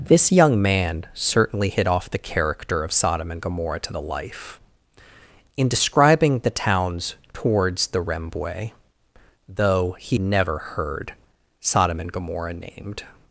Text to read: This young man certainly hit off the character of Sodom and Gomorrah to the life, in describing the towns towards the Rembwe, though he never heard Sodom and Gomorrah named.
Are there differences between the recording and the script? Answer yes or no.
no